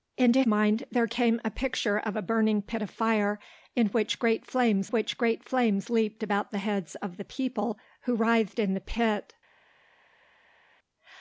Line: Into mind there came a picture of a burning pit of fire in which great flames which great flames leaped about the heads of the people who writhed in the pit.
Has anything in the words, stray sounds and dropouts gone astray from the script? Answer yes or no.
no